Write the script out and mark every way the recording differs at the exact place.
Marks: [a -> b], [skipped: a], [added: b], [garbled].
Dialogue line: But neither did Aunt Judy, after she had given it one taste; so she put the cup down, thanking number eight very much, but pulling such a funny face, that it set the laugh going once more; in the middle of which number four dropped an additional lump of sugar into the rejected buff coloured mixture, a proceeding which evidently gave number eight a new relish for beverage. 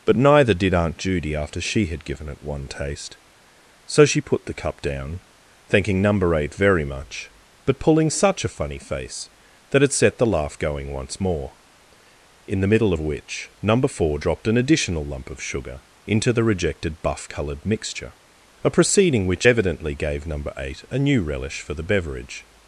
But neither did Aunt Judy, after she had given it one taste; so she put the cup down, thanking number eight very much, but pulling such a funny face, that it set the laugh going once more; in the middle of which number four dropped an additional lump of sugar into the rejected buff coloured mixture, a proceeding which evidently gave number eight a new relish for [added: the] beverage.